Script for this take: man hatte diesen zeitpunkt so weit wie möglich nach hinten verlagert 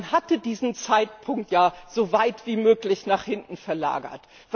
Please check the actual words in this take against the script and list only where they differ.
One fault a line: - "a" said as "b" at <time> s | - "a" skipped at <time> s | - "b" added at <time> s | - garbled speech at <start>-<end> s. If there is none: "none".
- "ja" added at 1.5 s